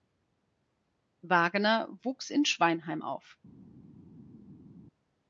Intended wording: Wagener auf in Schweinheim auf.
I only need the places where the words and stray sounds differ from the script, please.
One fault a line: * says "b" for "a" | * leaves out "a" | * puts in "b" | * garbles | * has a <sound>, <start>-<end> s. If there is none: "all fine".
* says "wuchs" for "auf"